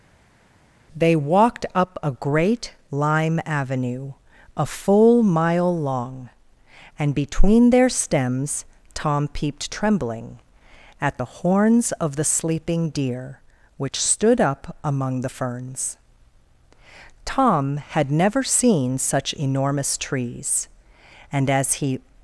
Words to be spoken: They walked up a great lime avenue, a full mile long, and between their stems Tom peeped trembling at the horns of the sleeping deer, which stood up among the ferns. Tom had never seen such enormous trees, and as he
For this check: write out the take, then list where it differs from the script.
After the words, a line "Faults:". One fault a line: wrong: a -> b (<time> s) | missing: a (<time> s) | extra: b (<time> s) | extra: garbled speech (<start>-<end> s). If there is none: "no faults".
They walked up a great lime avenue, a full mile long, and between their stems Tom peeped trembling at the horns of the sleeping deer, which stood up among the ferns. Tom had never seen such enormous trees, and as he
Faults:
no faults